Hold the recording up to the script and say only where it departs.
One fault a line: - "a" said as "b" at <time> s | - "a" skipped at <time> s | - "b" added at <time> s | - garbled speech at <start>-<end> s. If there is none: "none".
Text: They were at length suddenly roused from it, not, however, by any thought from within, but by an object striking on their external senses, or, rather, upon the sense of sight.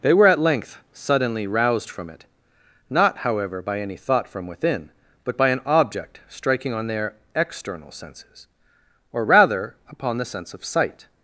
none